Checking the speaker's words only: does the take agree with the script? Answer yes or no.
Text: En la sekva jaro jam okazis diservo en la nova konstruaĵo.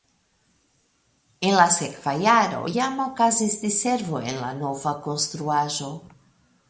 yes